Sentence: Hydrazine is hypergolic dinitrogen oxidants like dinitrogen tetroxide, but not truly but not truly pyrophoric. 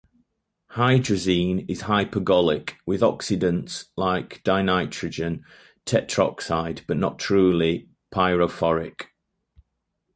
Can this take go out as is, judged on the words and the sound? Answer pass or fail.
fail